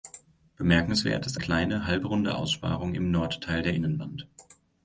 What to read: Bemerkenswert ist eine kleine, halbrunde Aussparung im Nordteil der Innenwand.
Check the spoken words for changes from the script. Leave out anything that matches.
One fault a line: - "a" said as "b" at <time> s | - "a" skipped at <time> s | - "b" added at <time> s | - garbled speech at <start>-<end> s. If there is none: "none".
- "eine" skipped at 1.4 s